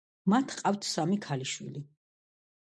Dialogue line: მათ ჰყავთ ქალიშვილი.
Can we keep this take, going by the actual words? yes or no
no